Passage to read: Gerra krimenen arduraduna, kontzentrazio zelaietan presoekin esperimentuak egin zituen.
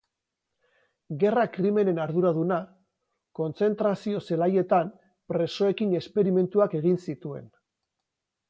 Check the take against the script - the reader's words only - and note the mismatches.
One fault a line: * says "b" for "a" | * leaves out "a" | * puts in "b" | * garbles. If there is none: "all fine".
all fine